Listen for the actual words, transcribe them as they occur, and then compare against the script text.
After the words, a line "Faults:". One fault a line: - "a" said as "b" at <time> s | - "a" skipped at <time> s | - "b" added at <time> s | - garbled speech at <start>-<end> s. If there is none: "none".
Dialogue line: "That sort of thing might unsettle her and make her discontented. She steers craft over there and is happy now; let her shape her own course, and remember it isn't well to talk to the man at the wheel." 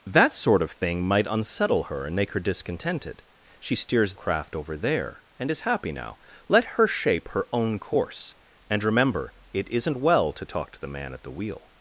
"That sort of thing might unsettle her and make her discontented. She steers craft over there and is happy now; let her shape her own course, and remember it isn't well to talk to the man at the wheel."
Faults:
none